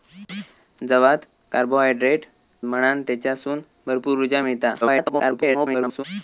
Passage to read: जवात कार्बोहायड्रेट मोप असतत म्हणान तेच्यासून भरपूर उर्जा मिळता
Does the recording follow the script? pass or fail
fail